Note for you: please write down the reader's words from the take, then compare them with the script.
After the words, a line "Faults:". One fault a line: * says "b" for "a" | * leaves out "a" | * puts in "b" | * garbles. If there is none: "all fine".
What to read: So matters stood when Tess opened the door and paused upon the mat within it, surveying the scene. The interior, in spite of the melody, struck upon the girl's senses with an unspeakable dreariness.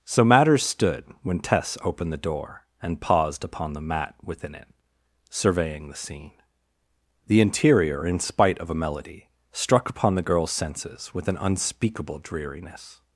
So matters stood when Tess opened the door and paused upon the mat within it, surveying the scene. The interior, in spite of a melody, struck upon the girl's senses with an unspeakable dreariness.
Faults:
* says "a" for "the"